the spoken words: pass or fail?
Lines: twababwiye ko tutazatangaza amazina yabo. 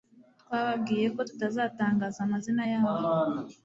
pass